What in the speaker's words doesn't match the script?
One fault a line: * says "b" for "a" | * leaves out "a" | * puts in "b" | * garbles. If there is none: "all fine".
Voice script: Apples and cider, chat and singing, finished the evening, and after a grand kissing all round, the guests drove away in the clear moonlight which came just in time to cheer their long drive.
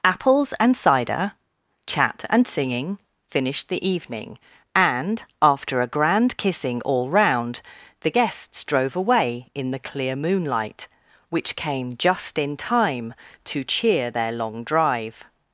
all fine